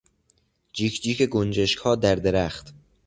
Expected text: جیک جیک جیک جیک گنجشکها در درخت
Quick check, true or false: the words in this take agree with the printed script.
false